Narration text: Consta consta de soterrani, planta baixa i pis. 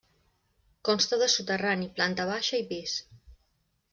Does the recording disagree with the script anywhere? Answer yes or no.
yes